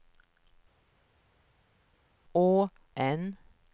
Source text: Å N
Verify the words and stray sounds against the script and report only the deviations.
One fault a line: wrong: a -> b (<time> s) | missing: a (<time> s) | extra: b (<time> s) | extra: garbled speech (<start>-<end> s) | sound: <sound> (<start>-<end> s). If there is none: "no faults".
no faults